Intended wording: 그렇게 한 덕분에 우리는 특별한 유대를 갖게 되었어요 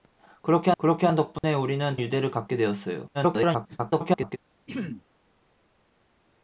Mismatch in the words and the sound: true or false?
true